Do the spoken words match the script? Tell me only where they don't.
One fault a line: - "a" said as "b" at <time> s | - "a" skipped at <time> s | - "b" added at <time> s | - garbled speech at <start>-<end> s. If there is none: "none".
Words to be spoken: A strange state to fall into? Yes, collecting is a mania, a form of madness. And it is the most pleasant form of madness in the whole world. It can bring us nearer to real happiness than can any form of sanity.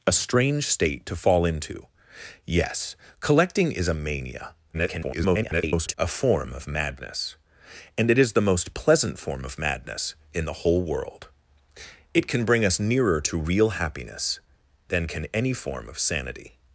- garbled speech at 4.7-5.9 s